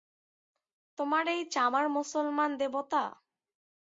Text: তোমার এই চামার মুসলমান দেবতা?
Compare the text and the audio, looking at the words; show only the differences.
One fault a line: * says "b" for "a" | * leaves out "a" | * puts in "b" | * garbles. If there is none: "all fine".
all fine